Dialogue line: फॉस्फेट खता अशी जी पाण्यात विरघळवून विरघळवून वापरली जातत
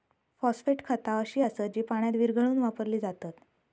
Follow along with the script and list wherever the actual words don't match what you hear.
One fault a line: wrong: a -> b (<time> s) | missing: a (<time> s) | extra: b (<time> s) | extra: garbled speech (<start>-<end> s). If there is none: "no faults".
extra: असत (1.4 s)
missing: विरघळवून (2.6 s)